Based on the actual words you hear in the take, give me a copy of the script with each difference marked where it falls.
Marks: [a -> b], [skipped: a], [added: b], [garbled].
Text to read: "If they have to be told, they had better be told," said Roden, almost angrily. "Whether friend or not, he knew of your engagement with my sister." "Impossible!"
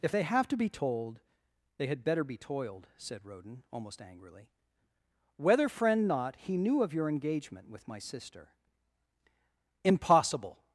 "If they have to be told, they had better be [told," -> toiled] said Roden, almost angrily. "Whether friend [skipped: or] not, he knew of your engagement with my sister." "Impossible!"